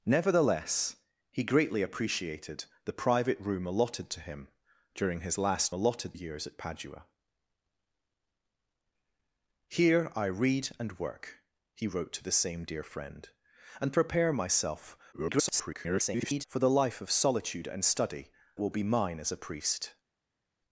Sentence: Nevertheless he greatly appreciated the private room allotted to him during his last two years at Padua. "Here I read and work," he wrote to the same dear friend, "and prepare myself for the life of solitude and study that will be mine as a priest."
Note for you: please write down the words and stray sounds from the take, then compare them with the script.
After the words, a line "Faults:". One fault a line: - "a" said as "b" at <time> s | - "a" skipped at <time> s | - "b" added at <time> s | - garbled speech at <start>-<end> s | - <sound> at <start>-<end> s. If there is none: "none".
Nevertheless he greatly appreciated the private room allotted to him during his last allotted years at Padua. "Here I read and work," he wrote to the same dear friend, "and prepare myself [garbled] for the life of solitude and study will be mine as a priest."
Faults:
- "two" said as "allotted" at 5.7 s
- garbled speech at 15.1-16.5 s
- "that" skipped at 18.3 s